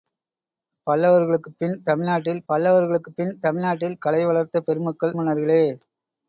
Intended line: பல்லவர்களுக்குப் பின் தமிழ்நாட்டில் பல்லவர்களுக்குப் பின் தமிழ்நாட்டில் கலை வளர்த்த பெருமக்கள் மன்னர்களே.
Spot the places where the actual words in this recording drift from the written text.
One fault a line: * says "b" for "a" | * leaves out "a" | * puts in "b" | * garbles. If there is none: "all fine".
all fine